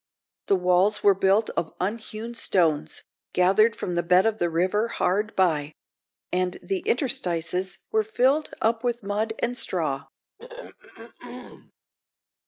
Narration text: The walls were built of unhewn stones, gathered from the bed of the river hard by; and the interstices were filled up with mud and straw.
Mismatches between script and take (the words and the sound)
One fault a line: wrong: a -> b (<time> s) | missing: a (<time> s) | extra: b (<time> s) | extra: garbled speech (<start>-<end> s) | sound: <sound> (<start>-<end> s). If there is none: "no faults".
sound: throat clearing (10.4-11.7 s)